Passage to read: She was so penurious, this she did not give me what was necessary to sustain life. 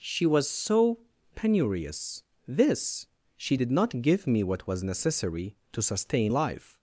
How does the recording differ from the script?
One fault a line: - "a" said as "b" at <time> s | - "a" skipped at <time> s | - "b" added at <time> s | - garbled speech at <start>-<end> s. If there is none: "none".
none